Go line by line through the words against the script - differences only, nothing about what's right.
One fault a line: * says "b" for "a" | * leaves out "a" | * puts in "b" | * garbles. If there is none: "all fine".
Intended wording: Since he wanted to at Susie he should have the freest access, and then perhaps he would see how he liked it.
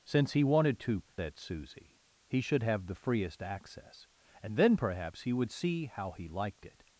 all fine